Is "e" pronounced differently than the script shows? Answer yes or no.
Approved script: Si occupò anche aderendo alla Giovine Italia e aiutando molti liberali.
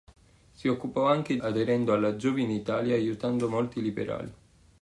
no